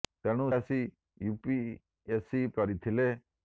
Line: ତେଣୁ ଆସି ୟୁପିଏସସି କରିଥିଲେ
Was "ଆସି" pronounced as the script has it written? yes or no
yes